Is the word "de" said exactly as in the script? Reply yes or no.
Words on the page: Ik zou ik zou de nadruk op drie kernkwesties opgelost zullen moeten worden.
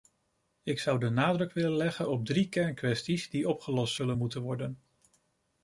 no